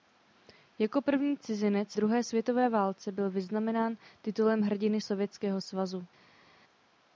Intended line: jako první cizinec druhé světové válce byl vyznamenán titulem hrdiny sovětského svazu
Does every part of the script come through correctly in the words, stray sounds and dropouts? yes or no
yes